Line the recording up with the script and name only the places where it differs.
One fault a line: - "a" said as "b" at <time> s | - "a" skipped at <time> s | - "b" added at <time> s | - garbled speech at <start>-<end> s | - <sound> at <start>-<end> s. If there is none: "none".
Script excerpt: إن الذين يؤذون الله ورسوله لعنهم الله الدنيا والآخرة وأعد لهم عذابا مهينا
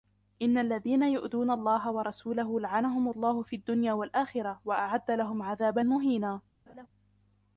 - "في" added at 3.4 s
- laugh at 6.7-6.9 s